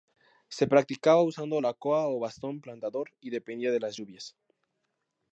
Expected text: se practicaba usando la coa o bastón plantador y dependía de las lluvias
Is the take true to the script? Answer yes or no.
yes